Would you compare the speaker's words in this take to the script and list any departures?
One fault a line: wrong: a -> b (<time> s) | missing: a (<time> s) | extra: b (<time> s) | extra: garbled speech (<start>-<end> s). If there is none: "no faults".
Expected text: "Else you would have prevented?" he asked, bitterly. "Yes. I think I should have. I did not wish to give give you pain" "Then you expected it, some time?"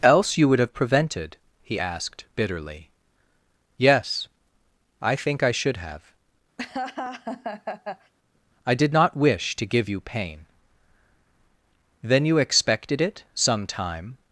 missing: give (9.9 s)